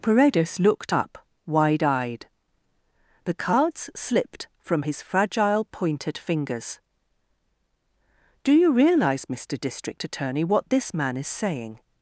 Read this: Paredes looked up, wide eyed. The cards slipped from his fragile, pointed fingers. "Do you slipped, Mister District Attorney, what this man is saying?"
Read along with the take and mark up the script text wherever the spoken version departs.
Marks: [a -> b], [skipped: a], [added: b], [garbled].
Paredes looked up, wide eyed. The cards slipped from his fragile, pointed fingers. "Do you [slipped, -> realize] Mister District Attorney, what this man is saying?"